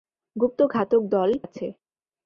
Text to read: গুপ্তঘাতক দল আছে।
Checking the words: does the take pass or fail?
pass